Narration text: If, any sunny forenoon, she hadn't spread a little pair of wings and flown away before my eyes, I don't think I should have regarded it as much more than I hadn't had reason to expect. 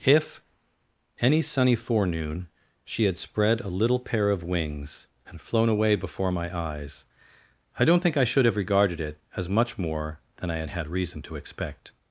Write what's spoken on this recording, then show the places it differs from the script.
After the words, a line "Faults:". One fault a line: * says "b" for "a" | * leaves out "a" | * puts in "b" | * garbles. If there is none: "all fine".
If, any sunny forenoon, she had spread a little pair of wings and flown away before my eyes, I don't think I should have regarded it as much more than I had had reason to expect.
Faults:
* says "had" for "hadn't"
* says "had" for "hadn't"